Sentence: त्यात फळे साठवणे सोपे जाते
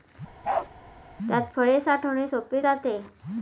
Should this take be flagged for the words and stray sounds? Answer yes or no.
yes